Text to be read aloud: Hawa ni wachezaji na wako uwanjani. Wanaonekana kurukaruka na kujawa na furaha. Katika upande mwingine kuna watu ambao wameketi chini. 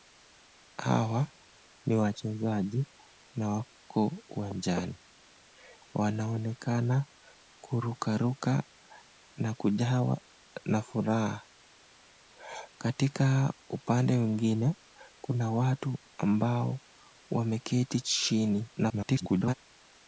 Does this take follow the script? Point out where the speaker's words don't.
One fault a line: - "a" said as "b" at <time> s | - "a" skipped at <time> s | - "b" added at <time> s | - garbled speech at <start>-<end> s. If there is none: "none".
- garbled speech at 18.8-19.5 s